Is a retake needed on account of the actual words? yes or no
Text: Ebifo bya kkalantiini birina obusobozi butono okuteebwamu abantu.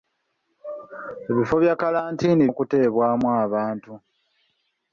yes